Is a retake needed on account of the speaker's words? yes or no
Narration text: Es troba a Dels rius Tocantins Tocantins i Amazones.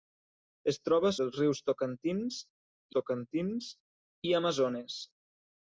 no